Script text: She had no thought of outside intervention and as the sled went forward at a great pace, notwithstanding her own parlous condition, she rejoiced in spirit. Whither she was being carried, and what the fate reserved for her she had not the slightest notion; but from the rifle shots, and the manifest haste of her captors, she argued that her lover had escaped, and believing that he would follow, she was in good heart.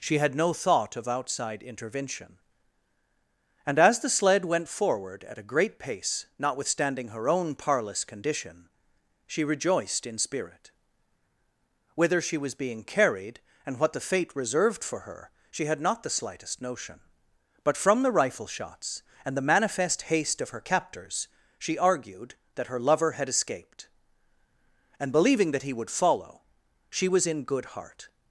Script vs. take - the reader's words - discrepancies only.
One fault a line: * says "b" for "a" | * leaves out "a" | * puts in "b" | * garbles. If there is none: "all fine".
all fine